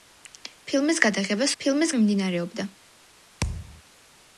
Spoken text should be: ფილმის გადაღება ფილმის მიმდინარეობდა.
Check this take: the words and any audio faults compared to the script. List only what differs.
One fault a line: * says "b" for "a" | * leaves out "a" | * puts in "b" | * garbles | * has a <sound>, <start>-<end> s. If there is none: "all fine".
* has a thud, 3.4-3.8 s